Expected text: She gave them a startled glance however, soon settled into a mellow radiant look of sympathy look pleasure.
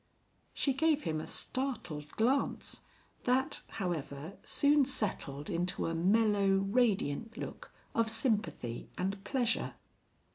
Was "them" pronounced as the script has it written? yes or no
no